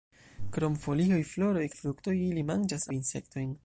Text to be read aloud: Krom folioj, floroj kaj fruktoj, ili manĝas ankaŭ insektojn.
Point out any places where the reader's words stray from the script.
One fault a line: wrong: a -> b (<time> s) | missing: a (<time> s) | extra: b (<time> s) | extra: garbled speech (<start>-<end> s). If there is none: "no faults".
missing: kaj (1.7 s)
missing: ankaŭ (2.9 s)